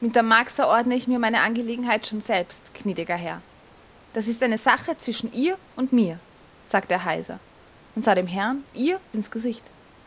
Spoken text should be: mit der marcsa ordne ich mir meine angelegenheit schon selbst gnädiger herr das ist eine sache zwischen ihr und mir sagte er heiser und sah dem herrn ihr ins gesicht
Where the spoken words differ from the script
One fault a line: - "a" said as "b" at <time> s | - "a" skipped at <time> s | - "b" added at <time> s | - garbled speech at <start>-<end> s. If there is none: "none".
none